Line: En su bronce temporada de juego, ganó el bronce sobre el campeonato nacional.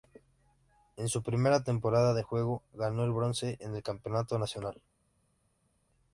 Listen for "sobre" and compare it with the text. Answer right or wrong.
wrong